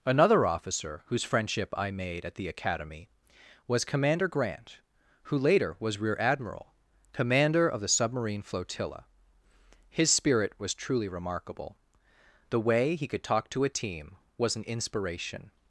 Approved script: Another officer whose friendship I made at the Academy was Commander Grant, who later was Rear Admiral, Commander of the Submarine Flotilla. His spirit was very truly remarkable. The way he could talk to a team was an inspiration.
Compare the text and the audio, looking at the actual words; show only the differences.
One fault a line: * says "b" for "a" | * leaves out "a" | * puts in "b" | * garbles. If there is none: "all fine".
* leaves out "very"